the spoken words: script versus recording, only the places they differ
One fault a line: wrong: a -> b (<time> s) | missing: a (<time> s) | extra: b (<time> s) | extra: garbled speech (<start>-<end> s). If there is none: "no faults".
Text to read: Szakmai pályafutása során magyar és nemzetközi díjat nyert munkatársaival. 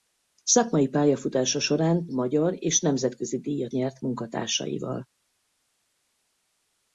no faults